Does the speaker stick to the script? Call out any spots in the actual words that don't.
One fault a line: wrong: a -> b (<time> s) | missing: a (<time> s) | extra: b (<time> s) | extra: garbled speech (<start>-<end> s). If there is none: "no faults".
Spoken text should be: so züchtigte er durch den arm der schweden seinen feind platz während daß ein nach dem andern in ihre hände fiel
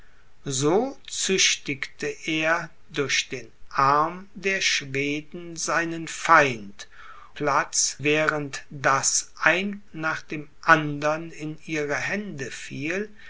no faults